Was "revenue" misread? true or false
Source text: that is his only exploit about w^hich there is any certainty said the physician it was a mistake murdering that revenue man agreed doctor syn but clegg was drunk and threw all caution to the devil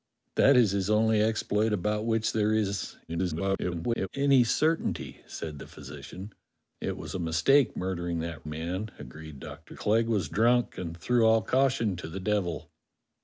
true